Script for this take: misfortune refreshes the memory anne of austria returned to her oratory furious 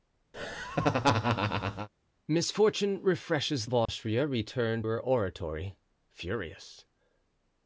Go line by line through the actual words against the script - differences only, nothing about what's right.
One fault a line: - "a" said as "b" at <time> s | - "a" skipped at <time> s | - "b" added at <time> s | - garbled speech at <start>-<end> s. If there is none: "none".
- "the memory anne" skipped at 3.7 s
- "to" skipped at 4.9 s